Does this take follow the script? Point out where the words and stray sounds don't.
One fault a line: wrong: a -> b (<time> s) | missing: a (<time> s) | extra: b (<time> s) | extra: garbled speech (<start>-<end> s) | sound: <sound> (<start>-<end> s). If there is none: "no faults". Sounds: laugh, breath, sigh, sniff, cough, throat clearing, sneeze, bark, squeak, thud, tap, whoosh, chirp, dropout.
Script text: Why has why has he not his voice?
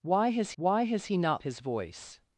no faults